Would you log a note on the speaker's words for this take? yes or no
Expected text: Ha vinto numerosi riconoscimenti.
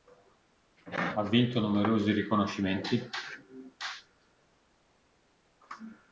no